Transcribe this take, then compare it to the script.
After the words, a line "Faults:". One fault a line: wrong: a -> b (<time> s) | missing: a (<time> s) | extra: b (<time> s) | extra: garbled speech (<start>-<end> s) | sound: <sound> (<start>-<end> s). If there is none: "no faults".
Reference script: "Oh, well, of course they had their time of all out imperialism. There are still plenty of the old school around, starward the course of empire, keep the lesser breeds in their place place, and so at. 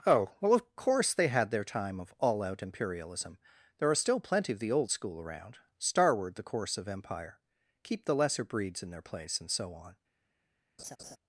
"Oh, well, of course they had their time of all out imperialism. There are still plenty of the old school around, starward the course of empire, keep the lesser breeds in their place, and so on.
Faults:
missing: place (9.4 s)
wrong: at -> on (9.7 s)
sound: laugh (10.8-11.2 s)